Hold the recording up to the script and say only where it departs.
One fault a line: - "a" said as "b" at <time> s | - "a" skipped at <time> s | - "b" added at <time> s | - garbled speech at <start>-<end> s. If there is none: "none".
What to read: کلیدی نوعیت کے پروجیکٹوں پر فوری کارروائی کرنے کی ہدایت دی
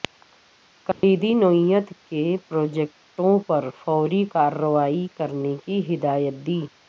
none